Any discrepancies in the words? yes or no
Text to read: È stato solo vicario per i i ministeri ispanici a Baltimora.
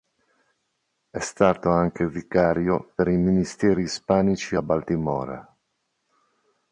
yes